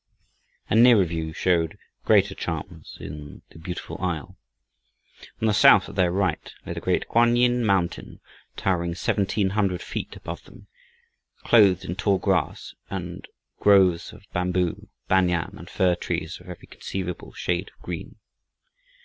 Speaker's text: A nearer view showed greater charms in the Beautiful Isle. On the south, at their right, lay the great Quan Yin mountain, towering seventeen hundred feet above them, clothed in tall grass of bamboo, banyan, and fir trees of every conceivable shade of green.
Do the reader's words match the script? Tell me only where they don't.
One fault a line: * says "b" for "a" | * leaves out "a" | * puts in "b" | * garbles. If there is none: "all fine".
* puts in "and groves"